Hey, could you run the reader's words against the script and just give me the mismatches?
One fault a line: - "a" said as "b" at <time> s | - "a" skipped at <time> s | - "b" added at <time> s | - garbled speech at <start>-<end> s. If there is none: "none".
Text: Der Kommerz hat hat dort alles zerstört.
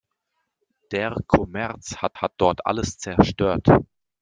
none